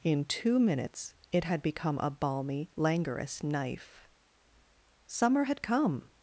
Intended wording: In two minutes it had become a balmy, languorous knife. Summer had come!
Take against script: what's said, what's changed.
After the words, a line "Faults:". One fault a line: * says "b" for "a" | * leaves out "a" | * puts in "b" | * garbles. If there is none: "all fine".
In two minutes it had become a balmy, languorous knife. Summer had come!
Faults:
all fine